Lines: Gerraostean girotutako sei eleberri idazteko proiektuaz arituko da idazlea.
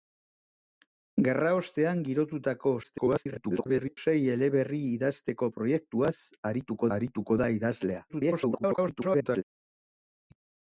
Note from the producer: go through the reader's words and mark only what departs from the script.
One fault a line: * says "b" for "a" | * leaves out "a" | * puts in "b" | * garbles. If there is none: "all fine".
* garbles
* puts in "arituko"
* garbles